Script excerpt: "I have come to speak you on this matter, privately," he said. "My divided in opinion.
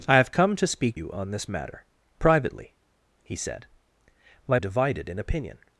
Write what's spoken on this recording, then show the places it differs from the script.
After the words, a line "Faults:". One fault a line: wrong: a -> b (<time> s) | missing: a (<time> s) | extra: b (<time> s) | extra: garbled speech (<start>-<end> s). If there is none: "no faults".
"I have come to speak you on this matter, privately," he said. "My divided in opinion.
Faults:
no faults